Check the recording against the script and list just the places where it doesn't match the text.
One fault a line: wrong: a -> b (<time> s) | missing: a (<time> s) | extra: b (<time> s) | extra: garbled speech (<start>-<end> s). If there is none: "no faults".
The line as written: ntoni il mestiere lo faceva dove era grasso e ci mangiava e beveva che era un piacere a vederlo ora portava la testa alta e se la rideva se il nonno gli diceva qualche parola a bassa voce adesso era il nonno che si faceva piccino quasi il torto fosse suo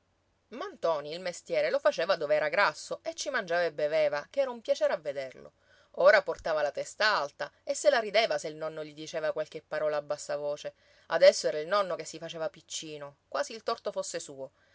no faults